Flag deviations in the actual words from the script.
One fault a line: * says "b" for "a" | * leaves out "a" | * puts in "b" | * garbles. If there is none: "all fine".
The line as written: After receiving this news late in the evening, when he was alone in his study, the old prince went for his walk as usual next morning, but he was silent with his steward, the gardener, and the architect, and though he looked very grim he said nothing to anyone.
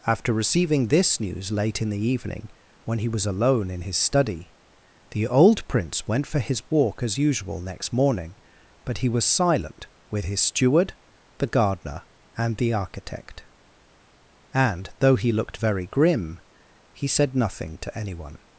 all fine